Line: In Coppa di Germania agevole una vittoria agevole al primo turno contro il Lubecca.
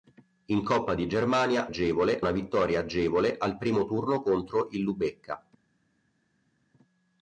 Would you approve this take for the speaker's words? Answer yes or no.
yes